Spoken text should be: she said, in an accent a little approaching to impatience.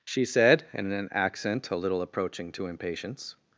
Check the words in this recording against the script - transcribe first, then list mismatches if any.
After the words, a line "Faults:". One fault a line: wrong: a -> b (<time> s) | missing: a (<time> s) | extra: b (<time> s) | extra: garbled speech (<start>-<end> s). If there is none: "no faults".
she said, in an accent a little approaching to impatience.
Faults:
no faults